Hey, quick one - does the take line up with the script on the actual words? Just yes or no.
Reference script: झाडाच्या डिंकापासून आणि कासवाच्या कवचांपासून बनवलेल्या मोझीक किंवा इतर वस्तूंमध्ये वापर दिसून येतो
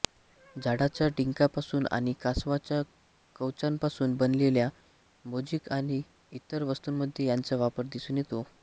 no